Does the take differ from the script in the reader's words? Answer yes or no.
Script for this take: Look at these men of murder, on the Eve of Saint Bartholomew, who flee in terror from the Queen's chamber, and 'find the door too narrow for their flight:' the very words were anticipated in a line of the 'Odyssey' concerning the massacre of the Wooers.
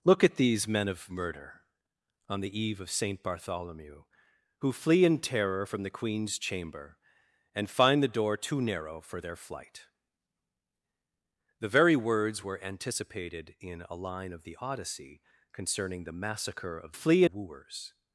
yes